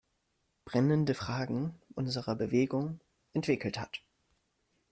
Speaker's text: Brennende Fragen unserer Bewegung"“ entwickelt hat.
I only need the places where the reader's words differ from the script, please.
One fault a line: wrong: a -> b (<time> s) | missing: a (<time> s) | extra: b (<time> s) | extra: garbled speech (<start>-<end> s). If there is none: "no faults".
no faults